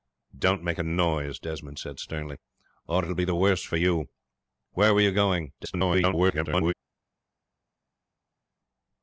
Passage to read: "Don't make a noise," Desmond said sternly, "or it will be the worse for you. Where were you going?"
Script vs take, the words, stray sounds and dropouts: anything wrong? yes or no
yes